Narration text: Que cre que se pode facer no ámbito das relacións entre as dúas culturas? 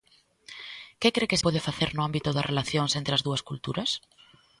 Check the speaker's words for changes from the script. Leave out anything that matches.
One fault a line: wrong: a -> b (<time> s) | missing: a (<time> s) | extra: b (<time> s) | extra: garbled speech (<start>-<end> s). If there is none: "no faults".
missing: se (1.4 s)